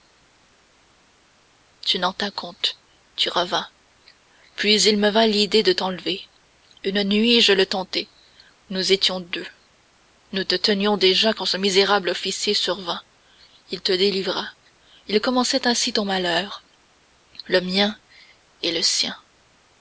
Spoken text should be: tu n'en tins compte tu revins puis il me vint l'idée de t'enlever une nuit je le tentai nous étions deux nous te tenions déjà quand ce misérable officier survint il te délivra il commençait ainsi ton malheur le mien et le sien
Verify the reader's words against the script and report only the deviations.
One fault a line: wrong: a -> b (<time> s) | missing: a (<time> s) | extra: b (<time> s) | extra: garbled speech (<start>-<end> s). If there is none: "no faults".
no faults